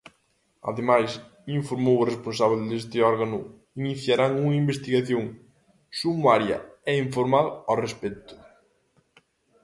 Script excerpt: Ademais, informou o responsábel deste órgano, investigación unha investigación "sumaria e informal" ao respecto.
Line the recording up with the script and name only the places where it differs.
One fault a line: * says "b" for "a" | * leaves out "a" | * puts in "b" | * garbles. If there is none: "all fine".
* says "iniciarán" for "investigación"